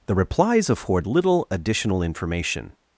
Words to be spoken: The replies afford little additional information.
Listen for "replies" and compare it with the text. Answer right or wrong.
right